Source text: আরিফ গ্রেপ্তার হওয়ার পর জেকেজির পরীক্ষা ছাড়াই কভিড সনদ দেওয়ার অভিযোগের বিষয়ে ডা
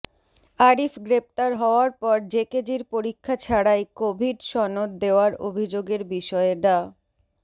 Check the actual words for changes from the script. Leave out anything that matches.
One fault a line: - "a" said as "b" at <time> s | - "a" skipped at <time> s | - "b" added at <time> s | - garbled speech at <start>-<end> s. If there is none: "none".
none